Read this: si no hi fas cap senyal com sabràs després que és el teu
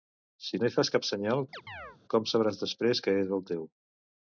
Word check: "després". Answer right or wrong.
right